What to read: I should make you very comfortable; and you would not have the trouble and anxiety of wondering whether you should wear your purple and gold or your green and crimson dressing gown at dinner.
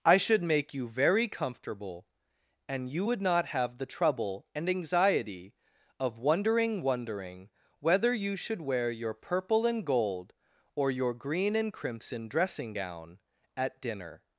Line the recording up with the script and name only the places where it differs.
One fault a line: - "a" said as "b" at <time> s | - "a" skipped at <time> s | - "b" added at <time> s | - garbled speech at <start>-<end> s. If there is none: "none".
- "wondering" added at 6.8 s